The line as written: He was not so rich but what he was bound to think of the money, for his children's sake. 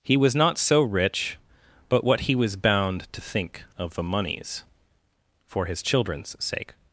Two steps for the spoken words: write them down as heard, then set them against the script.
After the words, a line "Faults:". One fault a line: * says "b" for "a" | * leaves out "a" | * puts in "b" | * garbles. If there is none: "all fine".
He was not so rich but what he was bound to think of the moneys, for his children's sake.
Faults:
* says "moneys" for "money"